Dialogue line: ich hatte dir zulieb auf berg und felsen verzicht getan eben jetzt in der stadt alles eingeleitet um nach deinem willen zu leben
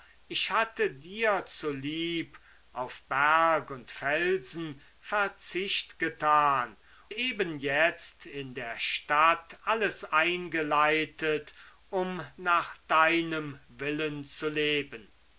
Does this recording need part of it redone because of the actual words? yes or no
no